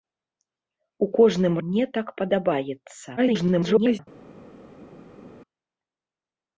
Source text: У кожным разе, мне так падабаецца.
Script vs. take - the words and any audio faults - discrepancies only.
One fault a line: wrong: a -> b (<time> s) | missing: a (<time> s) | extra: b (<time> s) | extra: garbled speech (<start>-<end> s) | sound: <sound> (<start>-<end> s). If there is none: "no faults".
missing: разе (1.6 s)
extra: garbled speech (3.2-4.0 s)